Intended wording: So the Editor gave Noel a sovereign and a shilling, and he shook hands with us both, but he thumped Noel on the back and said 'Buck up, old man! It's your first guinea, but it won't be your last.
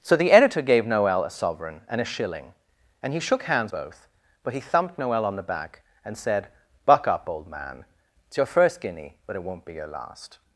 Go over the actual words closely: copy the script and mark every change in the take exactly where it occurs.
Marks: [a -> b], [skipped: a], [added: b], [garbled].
So the Editor gave Noel a sovereign and a shilling, and he shook hands [skipped: with us] both, but he thumped Noel on the back and said 'Buck up, old man! It's your first guinea, but it won't be your last.